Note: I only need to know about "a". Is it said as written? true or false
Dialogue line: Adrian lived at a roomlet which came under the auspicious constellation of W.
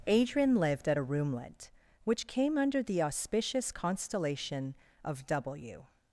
true